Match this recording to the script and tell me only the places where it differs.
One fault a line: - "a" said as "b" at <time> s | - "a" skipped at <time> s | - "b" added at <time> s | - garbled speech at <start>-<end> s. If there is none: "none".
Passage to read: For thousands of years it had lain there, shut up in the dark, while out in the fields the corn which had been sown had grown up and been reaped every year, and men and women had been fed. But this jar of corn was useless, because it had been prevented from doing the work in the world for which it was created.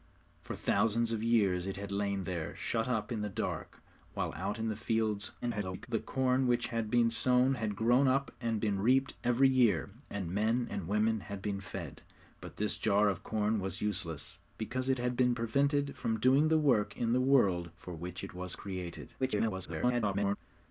- garbled speech at 5.4-5.9 s
- garbled speech at 19.2-20.4 s